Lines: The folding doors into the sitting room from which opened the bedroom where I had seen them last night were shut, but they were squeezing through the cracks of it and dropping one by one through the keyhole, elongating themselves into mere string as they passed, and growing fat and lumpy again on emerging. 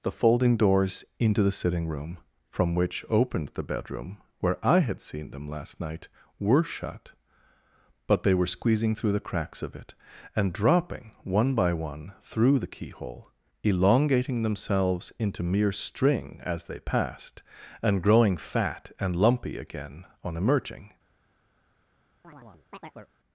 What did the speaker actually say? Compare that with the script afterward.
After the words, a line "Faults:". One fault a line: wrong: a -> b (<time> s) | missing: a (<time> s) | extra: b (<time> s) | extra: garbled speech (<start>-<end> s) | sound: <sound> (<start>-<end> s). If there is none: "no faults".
The folding doors into the sitting room from which opened the bedroom where I had seen them last night were shut, but they were squeezing through the cracks of it and dropping one by one through the keyhole, elongating themselves into mere string as they passed, and growing fat and lumpy again on emerging.
Faults:
sound: chirp (22.2-23.1 s)